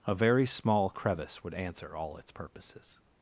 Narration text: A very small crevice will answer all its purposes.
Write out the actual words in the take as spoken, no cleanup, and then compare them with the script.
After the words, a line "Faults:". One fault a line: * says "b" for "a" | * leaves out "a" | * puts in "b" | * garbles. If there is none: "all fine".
A very small crevice would answer all its purposes.
Faults:
* says "would" for "will"